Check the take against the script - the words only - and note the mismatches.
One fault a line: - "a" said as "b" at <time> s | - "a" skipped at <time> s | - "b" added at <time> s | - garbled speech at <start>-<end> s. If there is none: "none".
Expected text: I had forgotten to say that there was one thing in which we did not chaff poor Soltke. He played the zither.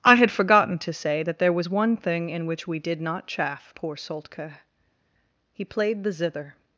none